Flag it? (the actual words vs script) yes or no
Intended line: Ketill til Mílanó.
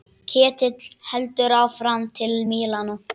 yes